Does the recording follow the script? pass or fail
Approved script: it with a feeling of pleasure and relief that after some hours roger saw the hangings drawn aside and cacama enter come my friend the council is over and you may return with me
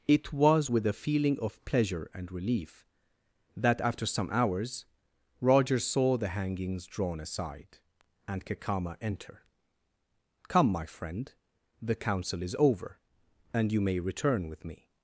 fail